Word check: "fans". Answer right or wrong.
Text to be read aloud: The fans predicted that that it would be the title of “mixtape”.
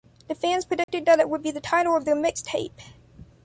right